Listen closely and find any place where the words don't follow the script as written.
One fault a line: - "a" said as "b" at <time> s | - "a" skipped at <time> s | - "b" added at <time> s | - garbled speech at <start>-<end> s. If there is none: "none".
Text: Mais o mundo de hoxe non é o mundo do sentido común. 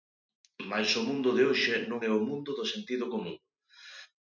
none